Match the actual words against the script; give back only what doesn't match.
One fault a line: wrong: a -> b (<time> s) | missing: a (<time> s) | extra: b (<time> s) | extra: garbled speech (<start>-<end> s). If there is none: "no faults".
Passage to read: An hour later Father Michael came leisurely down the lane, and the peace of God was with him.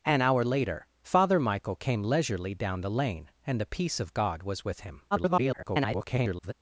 extra: garbled speech (5.1-6.5 s)